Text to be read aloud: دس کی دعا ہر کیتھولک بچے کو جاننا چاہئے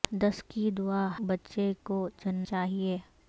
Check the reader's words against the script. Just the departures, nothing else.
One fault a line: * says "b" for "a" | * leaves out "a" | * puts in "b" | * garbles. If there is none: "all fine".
* leaves out "ہر کیتھولک"
* leaves out "جاننا"